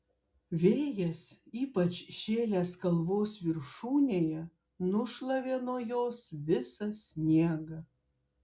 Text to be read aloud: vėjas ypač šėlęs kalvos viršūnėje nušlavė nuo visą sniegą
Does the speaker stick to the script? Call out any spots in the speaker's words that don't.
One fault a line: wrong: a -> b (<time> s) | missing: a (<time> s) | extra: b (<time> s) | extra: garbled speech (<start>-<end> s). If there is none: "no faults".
extra: jos (5.9 s)